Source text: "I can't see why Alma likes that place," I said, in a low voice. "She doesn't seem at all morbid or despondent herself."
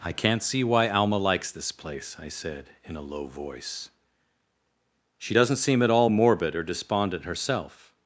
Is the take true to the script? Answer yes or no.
no